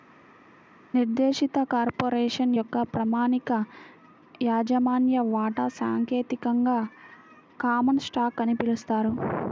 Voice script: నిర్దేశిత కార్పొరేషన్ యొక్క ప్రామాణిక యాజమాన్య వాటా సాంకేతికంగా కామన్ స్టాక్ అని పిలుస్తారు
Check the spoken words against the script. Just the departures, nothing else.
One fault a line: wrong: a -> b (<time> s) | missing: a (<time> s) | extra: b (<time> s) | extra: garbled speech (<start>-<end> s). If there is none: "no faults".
no faults